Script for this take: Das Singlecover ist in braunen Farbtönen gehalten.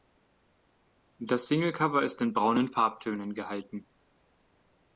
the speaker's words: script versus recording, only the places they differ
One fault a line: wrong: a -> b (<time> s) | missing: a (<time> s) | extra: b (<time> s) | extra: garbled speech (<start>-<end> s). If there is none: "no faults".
no faults